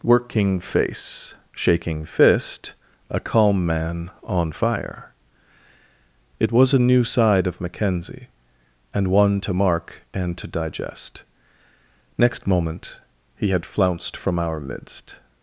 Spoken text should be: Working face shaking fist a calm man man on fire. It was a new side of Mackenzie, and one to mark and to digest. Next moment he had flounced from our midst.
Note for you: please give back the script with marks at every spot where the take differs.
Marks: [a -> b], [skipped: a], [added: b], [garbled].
Working face shaking fist a calm man [skipped: man] on fire. It was a new side of Mackenzie, and one to mark and to digest. Next moment he had flounced from our midst.